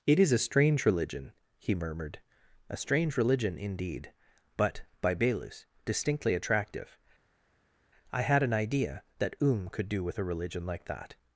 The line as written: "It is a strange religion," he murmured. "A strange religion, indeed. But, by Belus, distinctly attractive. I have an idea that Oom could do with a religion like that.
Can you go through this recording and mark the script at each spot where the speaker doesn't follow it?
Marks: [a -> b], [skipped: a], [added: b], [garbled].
"It is a strange religion," he murmured. "A strange religion, indeed. But, by Belus, distinctly attractive. I [have -> had] an idea that Oom could do with a religion like that.